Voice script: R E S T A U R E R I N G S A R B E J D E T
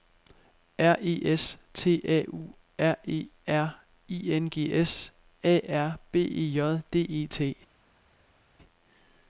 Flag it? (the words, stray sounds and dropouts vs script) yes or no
no